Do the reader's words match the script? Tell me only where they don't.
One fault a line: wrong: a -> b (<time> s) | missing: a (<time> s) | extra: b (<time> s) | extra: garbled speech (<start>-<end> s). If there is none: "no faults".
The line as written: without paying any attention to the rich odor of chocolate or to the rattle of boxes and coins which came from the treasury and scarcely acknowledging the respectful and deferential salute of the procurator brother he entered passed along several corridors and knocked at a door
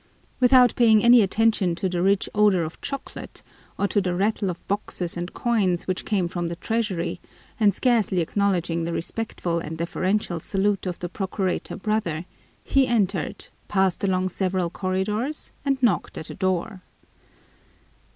no faults